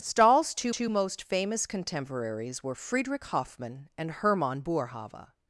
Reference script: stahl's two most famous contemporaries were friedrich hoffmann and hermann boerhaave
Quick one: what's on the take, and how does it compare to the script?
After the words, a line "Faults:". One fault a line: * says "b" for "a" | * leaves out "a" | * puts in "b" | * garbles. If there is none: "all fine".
stahl's two two most famous contemporaries were friedrich hoffmann and hermann boerhaave
Faults:
* puts in "two"